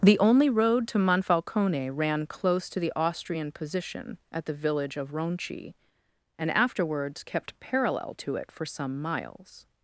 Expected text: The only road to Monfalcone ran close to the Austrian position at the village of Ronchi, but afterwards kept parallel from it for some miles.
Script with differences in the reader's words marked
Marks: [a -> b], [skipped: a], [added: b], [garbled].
The only road to Monfalcone ran close to the Austrian position at the village of Ronchi, [but -> and] afterwards kept parallel [from -> to] it for some miles.